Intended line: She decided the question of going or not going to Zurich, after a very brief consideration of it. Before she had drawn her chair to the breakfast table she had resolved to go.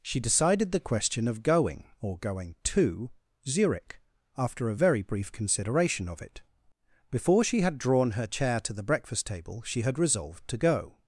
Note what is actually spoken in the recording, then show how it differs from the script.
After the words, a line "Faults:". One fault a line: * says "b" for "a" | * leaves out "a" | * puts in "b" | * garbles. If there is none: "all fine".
She decided the question of going or going to Zurich, after a very brief consideration of it. Before she had drawn her chair to the breakfast table she had resolved to go.
Faults:
* leaves out "not"